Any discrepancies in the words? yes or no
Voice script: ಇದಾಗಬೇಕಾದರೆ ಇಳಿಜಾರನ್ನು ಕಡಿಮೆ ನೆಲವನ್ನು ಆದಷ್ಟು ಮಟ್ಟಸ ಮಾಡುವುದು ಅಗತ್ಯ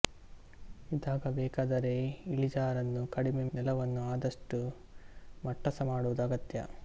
no